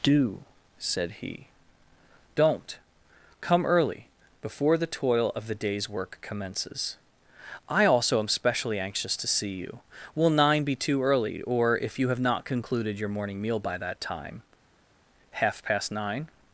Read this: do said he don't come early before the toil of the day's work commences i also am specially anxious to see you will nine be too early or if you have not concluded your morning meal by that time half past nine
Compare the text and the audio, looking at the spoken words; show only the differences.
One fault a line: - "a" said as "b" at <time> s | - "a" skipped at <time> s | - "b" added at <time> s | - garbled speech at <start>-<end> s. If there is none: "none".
none